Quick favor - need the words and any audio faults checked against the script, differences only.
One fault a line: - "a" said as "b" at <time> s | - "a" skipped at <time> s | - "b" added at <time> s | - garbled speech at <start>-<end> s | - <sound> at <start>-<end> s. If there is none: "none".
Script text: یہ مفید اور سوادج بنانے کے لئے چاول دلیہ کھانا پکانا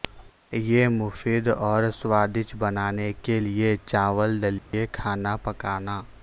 - dropout at 4.6-4.7 s